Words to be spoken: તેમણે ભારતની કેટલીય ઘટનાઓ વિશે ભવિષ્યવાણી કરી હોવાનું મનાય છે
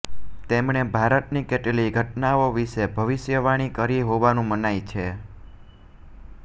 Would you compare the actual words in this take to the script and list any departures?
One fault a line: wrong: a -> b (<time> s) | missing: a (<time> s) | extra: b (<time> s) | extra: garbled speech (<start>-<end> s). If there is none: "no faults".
no faults